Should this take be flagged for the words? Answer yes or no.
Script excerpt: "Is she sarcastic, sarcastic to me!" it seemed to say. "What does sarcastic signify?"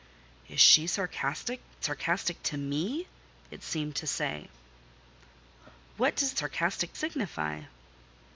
no